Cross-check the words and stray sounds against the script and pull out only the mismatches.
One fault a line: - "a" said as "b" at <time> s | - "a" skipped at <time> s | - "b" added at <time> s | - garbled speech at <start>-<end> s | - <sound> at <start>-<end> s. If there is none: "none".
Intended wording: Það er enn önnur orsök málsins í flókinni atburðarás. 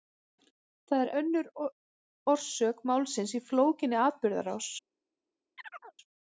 - "enn" skipped at 1.1 s
- chirp at 5.6-6.0 s